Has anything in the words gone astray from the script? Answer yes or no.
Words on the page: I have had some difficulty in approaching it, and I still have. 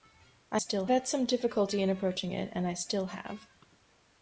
yes